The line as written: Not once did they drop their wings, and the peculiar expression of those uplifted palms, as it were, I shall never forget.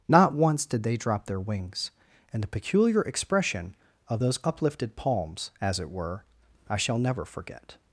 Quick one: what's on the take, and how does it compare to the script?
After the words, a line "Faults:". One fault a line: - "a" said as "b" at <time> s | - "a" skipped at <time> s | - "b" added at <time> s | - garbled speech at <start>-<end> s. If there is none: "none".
Not once did they drop their wings, and the peculiar expression of those uplifted palms, as it were, I shall never forget.
Faults:
none